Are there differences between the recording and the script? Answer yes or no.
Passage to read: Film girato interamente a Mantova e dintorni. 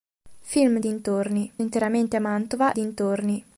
yes